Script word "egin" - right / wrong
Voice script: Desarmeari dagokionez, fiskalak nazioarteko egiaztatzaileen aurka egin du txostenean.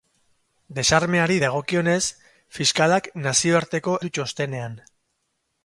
wrong